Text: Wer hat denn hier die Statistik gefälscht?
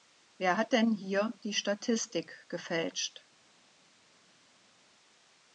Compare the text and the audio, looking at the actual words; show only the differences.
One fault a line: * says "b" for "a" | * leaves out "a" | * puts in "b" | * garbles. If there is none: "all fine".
all fine